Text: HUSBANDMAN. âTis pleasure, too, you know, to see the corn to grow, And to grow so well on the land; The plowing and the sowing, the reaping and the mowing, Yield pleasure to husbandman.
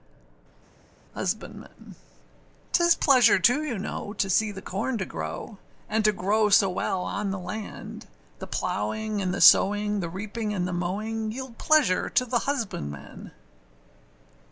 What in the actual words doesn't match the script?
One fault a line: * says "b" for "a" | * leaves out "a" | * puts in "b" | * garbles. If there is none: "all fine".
* puts in "the"